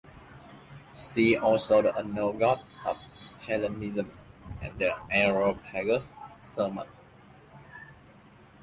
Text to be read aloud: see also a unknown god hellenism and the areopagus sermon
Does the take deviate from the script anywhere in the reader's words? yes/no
yes